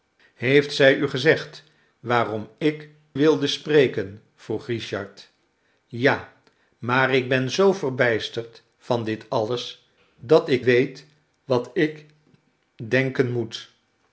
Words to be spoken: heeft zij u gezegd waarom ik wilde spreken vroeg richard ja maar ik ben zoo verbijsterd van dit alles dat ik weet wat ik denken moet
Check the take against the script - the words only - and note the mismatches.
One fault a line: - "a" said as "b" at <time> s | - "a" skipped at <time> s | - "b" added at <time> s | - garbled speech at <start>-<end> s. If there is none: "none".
none